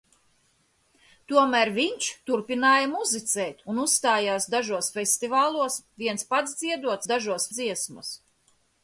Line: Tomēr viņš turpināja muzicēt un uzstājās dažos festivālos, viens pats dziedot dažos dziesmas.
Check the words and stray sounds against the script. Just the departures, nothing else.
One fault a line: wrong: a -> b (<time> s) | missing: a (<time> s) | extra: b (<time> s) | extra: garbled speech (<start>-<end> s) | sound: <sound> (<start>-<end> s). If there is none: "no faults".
no faults